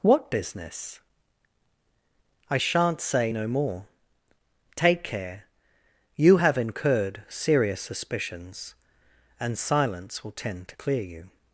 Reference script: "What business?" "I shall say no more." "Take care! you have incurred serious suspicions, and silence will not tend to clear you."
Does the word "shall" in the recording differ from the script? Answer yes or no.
yes